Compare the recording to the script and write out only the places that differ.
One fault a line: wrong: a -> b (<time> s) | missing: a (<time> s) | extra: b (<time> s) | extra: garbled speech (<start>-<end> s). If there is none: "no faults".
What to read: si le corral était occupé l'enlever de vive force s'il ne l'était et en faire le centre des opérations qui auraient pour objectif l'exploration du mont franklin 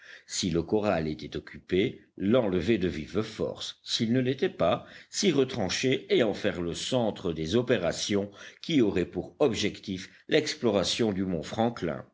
extra: pas s'y retrancher (4.5 s)